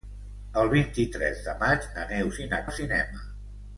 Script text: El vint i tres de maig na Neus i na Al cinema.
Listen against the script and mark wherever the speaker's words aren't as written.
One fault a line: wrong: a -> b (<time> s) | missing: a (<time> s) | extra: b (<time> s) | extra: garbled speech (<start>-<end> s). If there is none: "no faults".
no faults